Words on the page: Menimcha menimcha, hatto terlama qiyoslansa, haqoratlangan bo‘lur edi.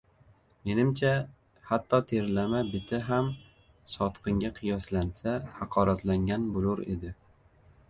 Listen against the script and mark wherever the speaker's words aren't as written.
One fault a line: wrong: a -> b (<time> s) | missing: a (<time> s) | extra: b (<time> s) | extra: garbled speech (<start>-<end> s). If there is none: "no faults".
missing: menimcha (1.1 s)
extra: biti ham sotqinga (2.7 s)